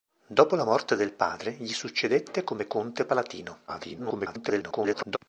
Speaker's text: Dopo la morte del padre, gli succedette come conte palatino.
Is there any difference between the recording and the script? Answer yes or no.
yes